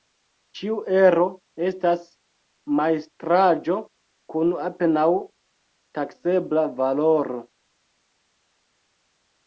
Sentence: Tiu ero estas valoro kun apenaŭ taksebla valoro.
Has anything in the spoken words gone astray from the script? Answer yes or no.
yes